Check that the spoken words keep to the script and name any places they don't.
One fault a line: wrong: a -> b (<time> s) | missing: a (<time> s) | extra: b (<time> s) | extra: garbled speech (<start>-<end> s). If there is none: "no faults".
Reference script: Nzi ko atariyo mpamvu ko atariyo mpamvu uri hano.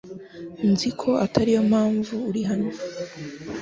missing: ko atariyo mpamvu (2.1 s)